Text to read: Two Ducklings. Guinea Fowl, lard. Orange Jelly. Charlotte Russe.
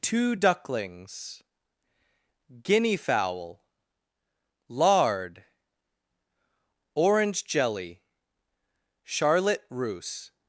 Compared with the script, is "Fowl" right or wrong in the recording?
right